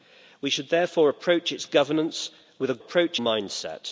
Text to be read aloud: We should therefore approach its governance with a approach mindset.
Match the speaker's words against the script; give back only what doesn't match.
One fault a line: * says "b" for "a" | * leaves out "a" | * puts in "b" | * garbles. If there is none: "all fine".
all fine